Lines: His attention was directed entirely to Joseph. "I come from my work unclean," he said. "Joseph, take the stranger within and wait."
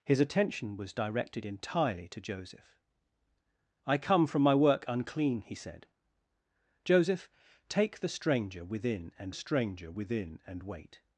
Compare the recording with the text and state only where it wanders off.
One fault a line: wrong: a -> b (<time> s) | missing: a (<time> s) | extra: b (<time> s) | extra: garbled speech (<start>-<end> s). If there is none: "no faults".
extra: stranger within and (9.3 s)